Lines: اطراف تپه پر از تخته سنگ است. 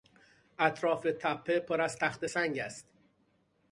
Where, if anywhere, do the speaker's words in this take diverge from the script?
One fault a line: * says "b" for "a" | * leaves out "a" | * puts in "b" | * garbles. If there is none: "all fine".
all fine